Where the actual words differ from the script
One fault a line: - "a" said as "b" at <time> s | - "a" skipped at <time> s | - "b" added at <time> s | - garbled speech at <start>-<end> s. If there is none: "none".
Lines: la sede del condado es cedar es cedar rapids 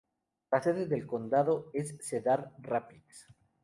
- "es cedar" skipped at 2.5 s